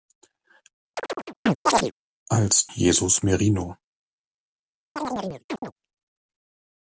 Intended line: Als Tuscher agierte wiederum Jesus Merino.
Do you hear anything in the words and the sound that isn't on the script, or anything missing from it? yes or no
yes